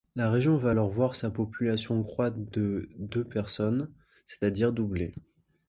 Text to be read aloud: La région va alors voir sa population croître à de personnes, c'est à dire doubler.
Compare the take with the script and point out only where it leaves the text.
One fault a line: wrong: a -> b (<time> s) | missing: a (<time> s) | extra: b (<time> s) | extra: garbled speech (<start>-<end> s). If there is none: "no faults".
wrong: à -> de (2.4 s)